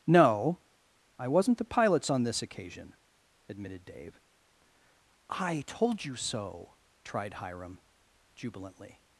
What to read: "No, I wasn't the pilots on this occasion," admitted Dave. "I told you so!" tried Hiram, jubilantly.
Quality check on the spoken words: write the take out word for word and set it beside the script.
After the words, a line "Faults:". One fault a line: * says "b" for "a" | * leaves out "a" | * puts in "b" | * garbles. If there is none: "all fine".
"No, I wasn't the pilots on this occasion," admitted Dave. "I told you so!" tried Hiram, jubilantly.
Faults:
all fine